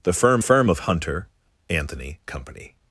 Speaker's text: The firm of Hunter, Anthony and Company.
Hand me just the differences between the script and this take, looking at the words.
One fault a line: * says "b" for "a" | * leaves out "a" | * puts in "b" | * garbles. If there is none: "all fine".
* puts in "firm"
* leaves out "and"